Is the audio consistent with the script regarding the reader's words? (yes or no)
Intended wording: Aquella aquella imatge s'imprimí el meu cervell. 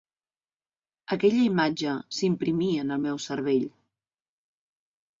no